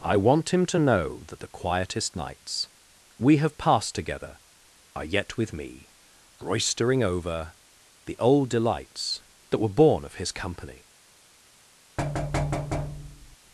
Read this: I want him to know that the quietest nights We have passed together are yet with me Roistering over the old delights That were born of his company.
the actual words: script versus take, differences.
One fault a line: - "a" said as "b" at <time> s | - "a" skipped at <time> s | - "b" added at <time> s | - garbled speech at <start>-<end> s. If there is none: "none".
none